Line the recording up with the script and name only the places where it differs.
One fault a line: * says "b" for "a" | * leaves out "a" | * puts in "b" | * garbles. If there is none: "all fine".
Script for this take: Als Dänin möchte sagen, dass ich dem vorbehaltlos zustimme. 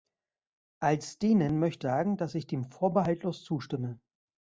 all fine